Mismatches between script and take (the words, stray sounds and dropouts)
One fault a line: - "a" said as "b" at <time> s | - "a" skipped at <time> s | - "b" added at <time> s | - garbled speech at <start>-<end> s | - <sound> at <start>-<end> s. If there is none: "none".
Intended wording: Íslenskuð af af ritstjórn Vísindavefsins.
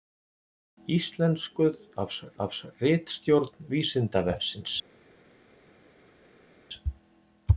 none